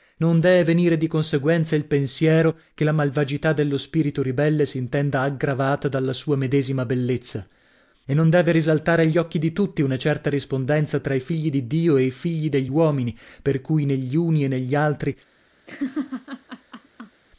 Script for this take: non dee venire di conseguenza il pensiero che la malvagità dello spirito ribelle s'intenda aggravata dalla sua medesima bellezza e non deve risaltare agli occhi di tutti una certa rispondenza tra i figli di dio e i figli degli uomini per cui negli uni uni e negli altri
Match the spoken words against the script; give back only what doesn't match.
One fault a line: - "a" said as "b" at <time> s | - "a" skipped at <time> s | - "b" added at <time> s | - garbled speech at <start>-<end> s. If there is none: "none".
- "uni" skipped at 14.4 s